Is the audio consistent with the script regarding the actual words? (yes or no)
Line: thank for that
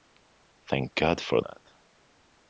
no